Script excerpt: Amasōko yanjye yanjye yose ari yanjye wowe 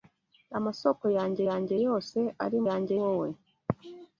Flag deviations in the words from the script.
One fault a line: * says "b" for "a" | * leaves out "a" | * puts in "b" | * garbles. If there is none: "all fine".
all fine